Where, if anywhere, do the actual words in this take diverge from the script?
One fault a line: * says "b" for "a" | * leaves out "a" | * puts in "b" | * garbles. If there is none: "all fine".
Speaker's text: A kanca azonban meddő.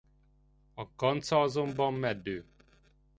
all fine